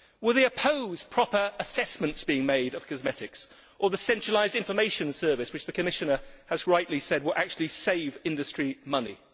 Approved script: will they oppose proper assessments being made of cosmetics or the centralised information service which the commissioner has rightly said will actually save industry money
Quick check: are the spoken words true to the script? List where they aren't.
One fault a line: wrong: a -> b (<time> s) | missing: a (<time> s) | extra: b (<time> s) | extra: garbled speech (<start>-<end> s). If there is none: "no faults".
no faults